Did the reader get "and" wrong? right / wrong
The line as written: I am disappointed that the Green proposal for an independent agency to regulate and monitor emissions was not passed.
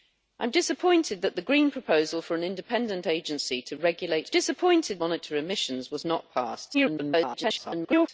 wrong